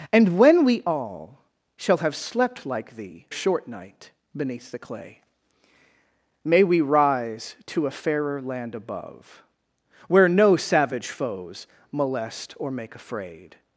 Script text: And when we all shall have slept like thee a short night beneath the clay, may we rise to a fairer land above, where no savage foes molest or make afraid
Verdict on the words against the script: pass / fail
pass